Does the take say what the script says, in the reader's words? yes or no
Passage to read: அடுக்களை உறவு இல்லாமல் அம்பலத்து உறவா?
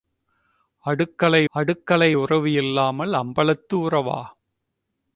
no